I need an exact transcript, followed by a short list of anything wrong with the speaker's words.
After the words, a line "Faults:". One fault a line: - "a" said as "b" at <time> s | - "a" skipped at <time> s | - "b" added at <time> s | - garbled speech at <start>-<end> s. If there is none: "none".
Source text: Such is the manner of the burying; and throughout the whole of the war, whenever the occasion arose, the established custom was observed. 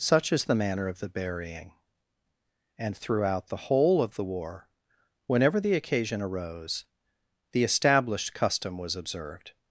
Such is the manner of the burying; and throughout the whole of the war, whenever the occasion arose, the established custom was observed.
Faults:
none